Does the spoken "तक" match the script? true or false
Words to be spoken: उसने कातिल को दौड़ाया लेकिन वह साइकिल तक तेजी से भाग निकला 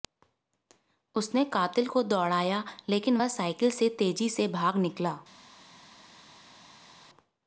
false